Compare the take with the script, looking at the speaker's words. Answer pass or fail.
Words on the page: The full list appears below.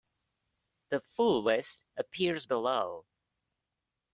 pass